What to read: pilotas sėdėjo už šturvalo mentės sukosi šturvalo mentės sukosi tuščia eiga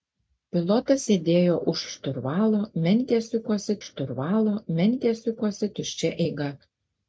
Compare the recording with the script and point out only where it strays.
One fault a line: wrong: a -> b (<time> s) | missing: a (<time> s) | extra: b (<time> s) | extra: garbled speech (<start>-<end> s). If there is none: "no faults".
no faults